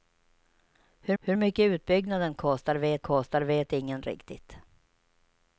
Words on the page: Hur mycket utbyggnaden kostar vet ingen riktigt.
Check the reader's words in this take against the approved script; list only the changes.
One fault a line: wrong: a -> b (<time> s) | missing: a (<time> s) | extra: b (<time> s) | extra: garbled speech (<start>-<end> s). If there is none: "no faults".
extra: hur (1.2 s)
extra: kostar vet (3.0 s)